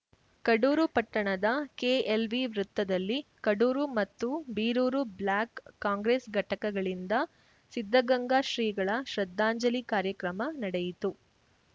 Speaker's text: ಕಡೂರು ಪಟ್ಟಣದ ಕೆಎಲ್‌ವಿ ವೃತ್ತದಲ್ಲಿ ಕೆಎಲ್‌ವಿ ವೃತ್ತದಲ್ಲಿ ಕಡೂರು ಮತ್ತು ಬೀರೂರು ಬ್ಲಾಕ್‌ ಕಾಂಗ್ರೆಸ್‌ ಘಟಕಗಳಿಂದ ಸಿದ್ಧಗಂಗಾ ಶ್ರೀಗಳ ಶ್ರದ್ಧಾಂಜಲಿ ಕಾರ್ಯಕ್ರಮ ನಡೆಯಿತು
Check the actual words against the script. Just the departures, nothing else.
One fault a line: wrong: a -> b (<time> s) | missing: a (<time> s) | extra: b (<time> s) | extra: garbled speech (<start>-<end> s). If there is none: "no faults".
missing: ಕೆಎಲ್‌ವಿ ವೃತ್ತದಲ್ಲಿ (3.2 s)